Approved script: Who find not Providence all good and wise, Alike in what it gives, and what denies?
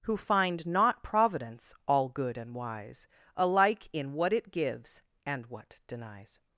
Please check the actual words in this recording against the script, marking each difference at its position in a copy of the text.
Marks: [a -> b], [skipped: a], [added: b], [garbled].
Who find not Providence all good and wise, Alike in what it gives, and what denies?